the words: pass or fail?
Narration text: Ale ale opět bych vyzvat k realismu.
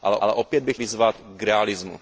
pass